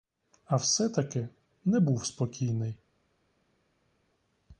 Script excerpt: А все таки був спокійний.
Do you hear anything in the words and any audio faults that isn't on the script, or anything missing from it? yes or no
yes